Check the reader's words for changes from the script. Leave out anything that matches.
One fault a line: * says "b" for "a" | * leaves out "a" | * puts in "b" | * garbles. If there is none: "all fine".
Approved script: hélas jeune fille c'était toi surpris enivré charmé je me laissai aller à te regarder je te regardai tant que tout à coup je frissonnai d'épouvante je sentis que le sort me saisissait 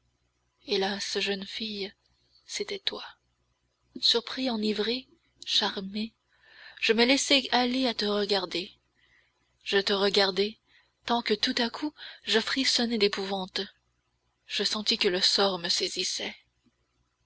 all fine